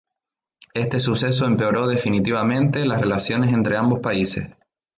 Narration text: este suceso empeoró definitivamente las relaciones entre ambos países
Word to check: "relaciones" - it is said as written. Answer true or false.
true